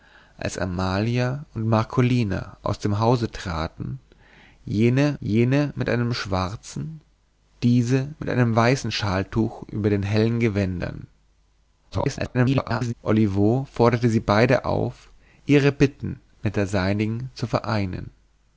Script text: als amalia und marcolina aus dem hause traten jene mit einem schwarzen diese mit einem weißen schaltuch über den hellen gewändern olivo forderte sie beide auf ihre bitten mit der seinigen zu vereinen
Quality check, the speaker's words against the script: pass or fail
fail